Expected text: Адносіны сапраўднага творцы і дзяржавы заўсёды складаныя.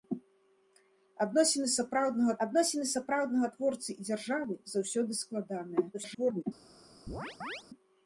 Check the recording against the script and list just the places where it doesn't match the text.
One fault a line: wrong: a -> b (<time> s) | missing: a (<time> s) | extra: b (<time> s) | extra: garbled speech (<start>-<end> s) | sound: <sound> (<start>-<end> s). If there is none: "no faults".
extra: адносіны сапраўднага (2.4 s)
extra: garbled speech (5.9-6.4 s)
sound: chirp (7.1-7.6 s)